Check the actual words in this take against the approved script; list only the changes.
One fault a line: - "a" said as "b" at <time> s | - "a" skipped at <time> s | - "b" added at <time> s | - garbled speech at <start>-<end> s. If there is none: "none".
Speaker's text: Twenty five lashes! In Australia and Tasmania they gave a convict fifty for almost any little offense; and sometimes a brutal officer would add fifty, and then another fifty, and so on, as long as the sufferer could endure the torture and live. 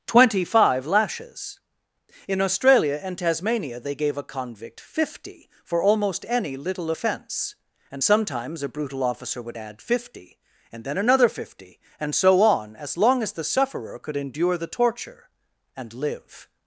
none